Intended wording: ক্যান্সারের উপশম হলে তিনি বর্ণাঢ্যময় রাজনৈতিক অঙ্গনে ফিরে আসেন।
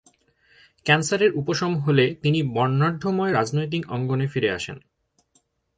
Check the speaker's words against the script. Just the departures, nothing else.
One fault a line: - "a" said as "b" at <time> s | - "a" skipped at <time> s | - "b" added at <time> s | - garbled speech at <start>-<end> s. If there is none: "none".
none